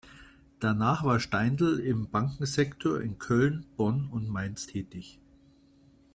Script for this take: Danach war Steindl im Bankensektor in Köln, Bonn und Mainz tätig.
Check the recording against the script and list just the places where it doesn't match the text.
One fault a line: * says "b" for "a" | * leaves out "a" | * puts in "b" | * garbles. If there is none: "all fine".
all fine